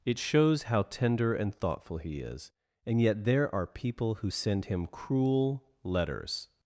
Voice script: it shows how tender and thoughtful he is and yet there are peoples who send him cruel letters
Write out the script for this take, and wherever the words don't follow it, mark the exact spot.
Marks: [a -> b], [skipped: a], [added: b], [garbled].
it shows how tender and thoughtful he is and yet there are [peoples -> people] who send him cruel letters